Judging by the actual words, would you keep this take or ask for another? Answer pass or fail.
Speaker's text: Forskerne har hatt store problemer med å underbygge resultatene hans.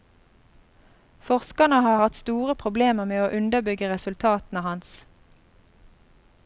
pass